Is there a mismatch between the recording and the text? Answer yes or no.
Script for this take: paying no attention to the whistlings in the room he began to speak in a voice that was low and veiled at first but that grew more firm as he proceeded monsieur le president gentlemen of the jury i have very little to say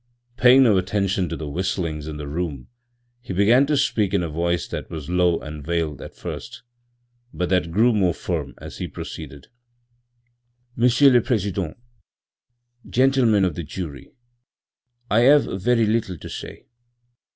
no